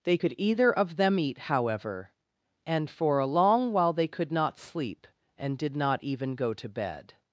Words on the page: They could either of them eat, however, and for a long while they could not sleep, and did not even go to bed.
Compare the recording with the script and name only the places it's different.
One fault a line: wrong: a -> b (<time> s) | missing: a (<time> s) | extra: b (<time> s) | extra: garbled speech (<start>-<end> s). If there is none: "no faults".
no faults